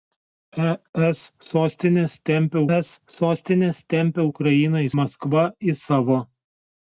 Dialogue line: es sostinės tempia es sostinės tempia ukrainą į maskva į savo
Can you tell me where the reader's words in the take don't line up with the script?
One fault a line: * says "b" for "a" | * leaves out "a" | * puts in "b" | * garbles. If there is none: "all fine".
all fine